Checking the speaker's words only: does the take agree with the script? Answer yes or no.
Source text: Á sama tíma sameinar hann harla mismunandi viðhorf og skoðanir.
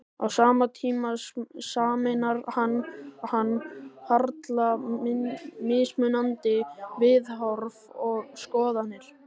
no